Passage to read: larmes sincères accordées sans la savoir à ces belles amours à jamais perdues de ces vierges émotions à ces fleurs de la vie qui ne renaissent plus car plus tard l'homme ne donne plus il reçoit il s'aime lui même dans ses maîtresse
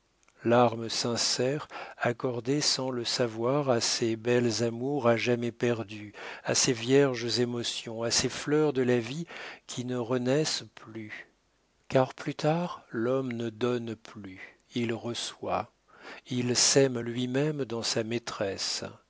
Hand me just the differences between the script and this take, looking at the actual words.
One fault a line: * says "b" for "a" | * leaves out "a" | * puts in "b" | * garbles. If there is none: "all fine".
* says "le" for "la"
* says "à" for "de"
* says "sa" for "ses"